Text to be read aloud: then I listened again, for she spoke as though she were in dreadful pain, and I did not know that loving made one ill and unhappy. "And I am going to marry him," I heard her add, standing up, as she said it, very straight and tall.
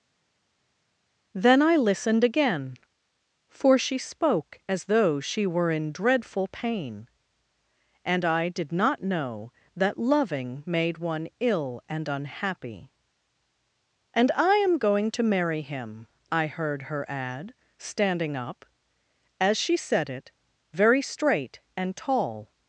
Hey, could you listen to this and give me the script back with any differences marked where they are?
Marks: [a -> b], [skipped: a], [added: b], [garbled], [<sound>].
then I listened again, for she spoke as though she were in dreadful pain, and I did not know that loving made one ill and unhappy. "And I am going to marry him," I heard her add, standing up, as she said it, very straight and tall.